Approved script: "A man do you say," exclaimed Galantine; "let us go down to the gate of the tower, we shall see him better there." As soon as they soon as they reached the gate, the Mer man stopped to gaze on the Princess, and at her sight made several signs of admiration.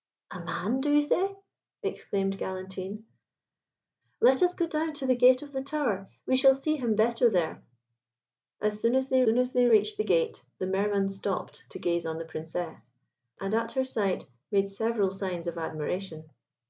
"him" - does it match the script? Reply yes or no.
yes